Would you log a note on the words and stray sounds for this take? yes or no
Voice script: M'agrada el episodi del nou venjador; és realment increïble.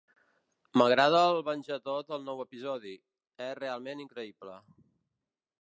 yes